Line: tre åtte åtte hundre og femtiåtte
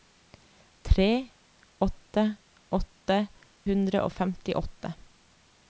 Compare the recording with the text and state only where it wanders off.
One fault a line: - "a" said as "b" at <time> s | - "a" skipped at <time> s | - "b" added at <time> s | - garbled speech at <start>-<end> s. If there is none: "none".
none